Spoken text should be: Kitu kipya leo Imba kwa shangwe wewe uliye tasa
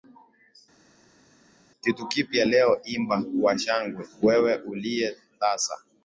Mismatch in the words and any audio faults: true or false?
false